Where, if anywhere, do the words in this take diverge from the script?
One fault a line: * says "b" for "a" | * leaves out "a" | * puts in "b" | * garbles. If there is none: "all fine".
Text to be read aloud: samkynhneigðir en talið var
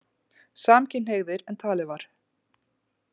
all fine